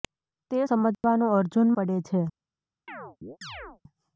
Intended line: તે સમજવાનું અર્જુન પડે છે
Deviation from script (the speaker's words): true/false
false